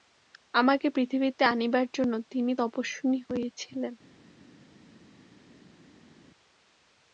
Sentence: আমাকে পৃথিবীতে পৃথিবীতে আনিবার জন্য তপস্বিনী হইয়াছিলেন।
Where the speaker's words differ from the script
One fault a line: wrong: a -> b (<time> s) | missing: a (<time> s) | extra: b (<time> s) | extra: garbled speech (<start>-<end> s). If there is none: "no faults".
missing: পৃথিবীতে (1.4 s)
extra: তিনি (2.3 s)